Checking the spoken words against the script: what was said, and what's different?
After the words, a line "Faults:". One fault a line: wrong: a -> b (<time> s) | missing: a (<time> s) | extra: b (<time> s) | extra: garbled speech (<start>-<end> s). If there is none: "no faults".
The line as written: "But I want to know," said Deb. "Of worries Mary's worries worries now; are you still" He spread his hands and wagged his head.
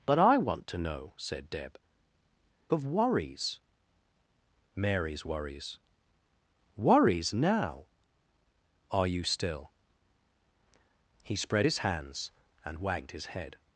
"But I want to know," said Deb. "Of worries Mary's worries worries now; are you still" He spread his hands and wagged his head.
Faults:
no faults